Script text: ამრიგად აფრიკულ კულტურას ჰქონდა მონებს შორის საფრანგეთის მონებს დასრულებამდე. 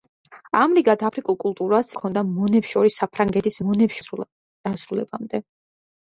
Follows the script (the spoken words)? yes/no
yes